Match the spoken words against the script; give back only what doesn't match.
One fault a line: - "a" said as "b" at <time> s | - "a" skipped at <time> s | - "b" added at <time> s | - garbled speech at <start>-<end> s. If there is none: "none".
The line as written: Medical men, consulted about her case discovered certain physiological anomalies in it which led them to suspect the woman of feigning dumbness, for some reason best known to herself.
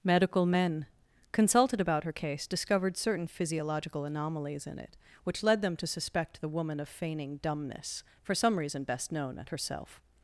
- "to" said as "at" at 9.4 s